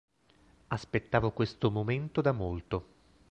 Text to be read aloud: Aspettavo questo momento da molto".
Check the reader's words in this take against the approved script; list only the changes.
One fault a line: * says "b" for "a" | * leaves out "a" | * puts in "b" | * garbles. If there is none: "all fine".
all fine